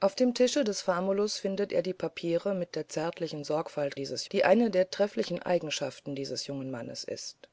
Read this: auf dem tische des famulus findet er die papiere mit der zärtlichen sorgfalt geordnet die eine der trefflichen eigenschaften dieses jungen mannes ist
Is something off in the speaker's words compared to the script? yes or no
yes